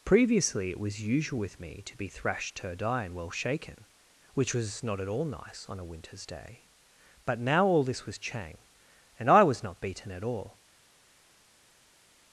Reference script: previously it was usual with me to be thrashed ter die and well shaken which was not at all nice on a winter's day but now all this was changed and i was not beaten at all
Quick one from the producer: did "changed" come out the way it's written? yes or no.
no